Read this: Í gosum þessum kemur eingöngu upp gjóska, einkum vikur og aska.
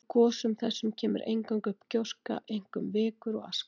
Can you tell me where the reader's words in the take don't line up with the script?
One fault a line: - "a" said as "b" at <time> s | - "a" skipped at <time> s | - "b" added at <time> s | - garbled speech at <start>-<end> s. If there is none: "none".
none